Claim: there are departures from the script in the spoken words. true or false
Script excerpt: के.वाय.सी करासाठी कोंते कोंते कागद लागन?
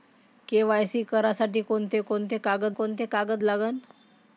true